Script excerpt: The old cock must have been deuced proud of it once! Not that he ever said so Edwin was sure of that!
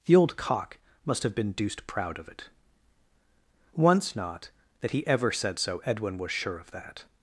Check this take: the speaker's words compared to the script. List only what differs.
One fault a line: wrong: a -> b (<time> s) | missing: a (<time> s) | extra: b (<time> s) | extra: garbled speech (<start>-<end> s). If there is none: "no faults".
no faults